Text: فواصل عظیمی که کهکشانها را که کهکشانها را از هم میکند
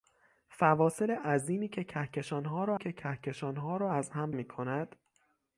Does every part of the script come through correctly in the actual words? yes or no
yes